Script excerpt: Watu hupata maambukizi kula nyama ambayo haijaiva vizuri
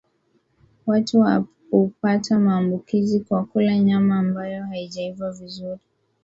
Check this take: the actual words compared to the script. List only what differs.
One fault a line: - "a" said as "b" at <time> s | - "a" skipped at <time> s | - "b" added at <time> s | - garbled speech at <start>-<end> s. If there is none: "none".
- "kwa" added at 3.2 s